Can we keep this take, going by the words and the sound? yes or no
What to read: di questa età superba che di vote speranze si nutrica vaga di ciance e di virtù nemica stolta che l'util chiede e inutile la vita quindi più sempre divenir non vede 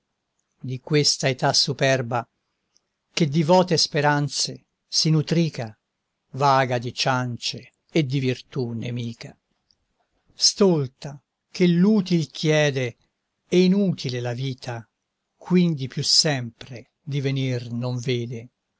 yes